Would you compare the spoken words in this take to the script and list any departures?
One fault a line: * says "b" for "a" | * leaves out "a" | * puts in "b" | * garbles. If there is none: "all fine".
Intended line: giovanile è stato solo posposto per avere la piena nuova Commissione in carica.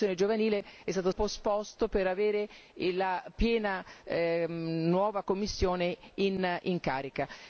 * leaves out "solo"